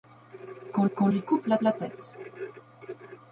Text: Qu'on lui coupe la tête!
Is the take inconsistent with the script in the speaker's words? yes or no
yes